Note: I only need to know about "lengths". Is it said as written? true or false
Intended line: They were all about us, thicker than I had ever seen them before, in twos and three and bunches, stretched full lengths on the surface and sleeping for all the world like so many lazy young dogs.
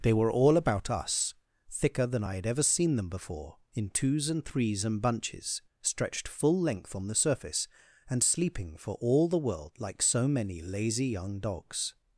false